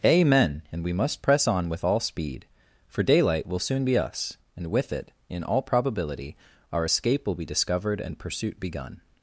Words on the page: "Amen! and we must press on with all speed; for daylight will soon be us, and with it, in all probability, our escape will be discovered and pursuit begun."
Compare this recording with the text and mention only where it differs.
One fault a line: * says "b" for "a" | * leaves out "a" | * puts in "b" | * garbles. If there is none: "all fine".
all fine